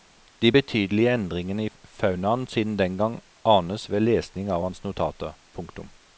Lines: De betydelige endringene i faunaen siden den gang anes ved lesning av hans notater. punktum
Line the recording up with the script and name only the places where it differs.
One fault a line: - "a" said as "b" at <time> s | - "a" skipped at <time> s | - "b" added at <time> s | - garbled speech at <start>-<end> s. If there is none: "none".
none